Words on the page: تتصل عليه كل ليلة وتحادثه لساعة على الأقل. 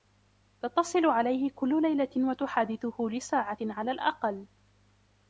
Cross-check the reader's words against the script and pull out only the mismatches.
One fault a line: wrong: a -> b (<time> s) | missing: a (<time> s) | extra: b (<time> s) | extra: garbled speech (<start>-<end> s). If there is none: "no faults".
no faults